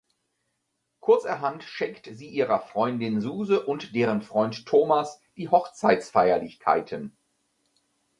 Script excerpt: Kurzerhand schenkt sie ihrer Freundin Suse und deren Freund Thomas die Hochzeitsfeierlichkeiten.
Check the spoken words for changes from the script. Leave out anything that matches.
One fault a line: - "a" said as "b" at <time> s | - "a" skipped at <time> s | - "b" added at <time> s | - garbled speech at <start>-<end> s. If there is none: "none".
none